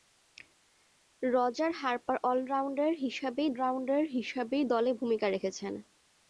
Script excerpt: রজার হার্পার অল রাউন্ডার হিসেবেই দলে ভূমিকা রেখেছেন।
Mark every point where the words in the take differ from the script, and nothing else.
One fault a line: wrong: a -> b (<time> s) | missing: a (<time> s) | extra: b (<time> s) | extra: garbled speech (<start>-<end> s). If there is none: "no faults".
extra: রাউন্ডার হিসেবেই (3.5 s)